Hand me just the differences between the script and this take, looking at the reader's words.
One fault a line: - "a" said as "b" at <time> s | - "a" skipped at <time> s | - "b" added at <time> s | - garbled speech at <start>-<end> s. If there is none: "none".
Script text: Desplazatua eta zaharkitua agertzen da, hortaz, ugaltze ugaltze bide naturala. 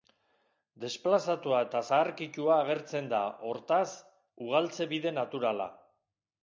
- "ugaltze" skipped at 4.9 s